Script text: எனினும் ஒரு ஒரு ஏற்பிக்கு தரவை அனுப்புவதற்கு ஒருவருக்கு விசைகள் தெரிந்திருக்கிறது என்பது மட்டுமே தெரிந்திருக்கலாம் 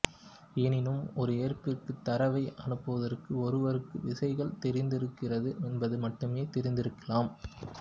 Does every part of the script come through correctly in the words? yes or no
no